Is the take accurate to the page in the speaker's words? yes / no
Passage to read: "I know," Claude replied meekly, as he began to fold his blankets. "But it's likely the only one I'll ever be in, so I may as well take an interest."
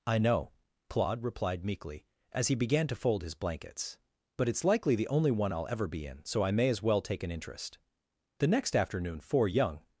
no